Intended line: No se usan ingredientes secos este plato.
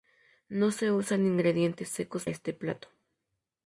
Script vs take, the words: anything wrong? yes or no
no